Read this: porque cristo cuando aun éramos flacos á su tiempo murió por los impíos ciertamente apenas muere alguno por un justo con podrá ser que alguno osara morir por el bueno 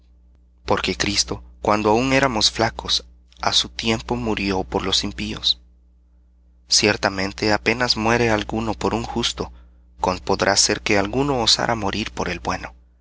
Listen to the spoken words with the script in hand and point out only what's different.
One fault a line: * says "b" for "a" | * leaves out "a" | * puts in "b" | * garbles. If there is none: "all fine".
all fine